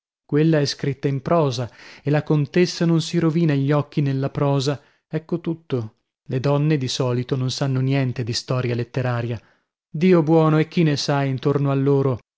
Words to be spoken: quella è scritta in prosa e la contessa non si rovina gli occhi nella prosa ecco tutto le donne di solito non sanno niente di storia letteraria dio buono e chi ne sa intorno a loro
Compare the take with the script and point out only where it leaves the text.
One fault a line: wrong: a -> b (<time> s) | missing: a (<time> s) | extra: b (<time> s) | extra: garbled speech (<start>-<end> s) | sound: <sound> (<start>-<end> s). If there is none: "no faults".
no faults